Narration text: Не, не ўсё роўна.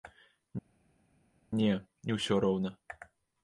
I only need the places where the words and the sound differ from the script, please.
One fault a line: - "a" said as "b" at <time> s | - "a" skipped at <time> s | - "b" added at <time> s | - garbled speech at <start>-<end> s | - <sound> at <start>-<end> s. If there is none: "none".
none